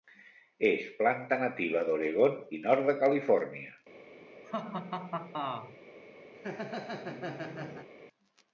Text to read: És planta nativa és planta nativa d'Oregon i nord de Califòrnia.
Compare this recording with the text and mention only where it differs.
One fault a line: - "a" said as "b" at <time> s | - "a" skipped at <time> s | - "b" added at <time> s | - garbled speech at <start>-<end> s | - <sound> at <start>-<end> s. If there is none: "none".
- "és planta nativa" skipped at 1.9 s
- laugh at 4.4-5.8 s
- laugh at 6.3-7.9 s